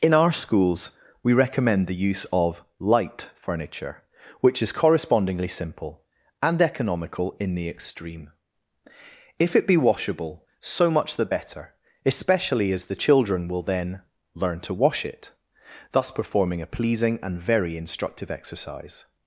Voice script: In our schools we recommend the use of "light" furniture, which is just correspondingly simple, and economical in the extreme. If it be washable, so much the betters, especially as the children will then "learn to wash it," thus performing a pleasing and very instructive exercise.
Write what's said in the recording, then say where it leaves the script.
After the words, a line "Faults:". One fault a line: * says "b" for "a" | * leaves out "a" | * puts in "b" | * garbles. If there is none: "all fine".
In our schools we recommend the use of "light" furniture, which is correspondingly simple, and economical in the extreme. If it be washable, so much the better, especially as the children will then "learn to wash it," thus performing a pleasing and very instructive exercise.
Faults:
* leaves out "just"
* says "better" for "betters"